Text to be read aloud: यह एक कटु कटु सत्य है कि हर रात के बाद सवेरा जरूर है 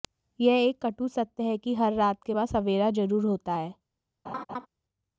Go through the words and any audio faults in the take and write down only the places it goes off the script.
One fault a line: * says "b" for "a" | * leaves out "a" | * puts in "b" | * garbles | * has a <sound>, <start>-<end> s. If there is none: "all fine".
* leaves out "कटु"
* puts in "होता"
* has a laugh, 4.3-4.7 s